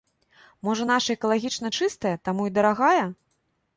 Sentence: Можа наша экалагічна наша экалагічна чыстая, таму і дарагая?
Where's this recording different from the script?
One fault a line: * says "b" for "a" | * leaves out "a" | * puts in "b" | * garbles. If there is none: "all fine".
* leaves out "наша экалагічна"